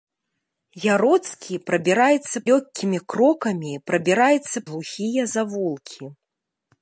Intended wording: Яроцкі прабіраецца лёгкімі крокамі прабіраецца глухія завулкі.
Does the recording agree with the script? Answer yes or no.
yes